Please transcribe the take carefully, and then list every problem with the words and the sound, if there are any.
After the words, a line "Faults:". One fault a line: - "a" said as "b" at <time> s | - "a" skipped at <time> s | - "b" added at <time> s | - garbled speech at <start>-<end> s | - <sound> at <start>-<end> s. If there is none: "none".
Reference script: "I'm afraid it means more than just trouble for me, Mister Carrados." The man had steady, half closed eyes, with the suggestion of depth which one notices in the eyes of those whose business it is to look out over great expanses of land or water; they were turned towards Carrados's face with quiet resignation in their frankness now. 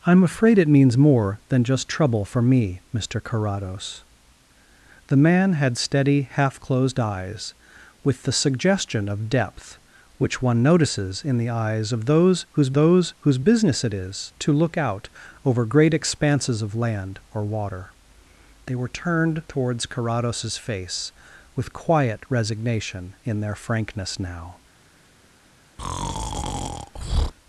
"I'm afraid it means more than just trouble for me, Mister Carrados." The man had steady, half closed eyes, with the suggestion of depth which one notices in the eyes of those whose those whose business it is to look out over great expanses of land or water; they were turned towards Carrados's face with quiet resignation in their frankness now.
Faults:
- "those whose" added at 12.7 s
- breath at 25.8-27.3 s